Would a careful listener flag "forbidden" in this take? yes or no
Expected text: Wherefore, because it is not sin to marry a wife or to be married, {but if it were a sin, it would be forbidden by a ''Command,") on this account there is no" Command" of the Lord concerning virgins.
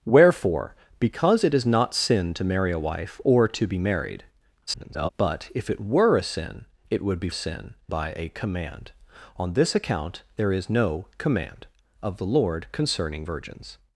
yes